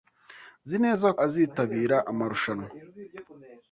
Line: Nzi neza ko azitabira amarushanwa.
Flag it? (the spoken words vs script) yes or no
yes